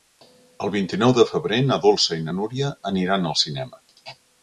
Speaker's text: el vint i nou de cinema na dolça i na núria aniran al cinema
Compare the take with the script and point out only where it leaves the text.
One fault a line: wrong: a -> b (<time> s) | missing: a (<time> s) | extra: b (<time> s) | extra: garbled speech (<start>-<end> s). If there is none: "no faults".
wrong: cinema -> febrer (1.3 s)